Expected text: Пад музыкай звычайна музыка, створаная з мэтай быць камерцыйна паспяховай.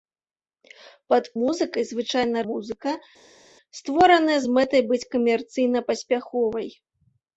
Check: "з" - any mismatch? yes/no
no